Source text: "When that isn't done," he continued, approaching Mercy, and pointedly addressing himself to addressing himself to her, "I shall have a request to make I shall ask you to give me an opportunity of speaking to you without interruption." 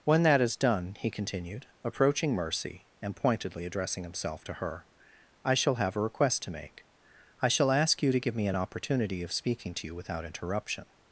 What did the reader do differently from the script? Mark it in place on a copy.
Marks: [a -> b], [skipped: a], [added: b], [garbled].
"When that [isn't -> is] done," he continued, approaching Mercy, and pointedly addressing himself to [skipped: addressing himself to] her, "I shall have a request to make I shall ask you to give me an opportunity of speaking to you without interruption."